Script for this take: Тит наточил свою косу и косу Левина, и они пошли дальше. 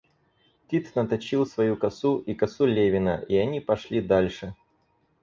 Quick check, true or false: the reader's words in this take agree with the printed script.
true